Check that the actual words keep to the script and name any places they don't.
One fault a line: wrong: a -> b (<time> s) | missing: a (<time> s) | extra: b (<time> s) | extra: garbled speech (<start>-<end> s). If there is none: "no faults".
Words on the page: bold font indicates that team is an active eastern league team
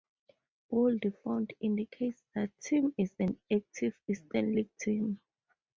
no faults